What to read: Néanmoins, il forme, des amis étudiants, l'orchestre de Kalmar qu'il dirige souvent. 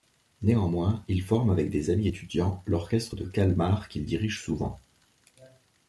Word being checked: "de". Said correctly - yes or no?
yes